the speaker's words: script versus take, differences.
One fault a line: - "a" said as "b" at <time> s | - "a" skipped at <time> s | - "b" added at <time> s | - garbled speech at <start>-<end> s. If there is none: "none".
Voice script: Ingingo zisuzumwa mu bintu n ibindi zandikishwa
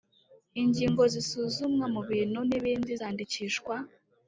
none